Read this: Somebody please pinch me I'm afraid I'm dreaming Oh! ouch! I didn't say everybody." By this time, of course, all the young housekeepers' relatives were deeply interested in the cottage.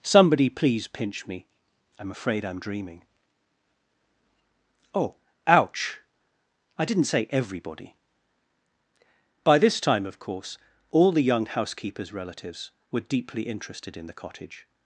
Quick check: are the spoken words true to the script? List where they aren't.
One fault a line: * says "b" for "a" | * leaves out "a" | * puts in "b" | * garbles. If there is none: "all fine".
all fine